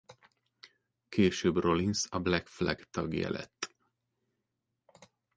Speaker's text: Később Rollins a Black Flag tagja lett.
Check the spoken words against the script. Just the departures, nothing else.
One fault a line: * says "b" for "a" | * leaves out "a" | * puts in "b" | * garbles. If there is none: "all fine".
all fine